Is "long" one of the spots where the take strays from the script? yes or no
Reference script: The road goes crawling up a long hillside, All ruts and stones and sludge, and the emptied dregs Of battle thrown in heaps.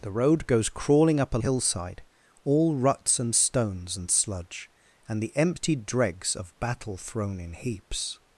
yes